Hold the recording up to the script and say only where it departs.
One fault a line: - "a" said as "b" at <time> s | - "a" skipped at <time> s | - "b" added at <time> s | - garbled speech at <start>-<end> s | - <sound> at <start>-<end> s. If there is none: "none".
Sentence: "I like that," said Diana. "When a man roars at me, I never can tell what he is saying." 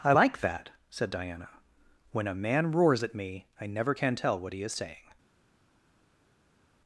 none